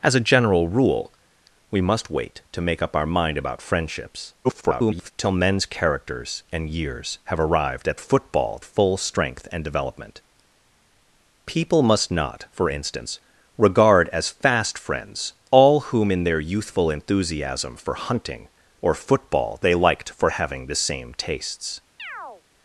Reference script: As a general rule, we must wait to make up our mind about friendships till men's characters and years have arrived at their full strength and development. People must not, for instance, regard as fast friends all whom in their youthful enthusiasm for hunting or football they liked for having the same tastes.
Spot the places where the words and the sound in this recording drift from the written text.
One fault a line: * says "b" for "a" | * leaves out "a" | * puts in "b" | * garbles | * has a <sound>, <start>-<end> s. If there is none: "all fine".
* garbles
* says "football" for "their"
* has a chirp, 22.0-22.4 s